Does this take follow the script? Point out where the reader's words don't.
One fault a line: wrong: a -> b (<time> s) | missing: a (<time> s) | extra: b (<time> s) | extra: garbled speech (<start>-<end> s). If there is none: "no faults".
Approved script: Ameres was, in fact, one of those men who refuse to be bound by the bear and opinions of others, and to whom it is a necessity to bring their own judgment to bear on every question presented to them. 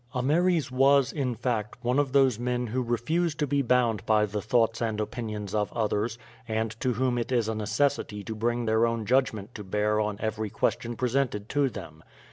wrong: bear -> thoughts (4.4 s)